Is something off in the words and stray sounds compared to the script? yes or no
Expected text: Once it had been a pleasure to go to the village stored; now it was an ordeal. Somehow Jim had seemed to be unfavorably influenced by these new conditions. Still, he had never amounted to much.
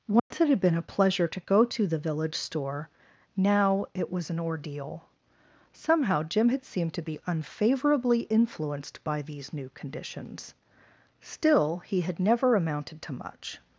yes